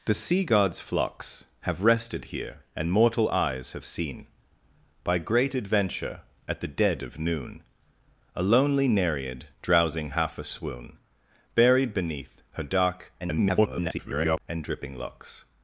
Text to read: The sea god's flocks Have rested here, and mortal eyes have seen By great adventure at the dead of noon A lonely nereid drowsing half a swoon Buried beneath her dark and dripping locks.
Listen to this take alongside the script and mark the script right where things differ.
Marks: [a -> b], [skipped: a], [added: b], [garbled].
The sea god's flocks Have rested here, and mortal eyes have seen By great adventure at the dead of noon A lonely nereid drowsing half a swoon Buried beneath her dark [garbled] and dripping locks.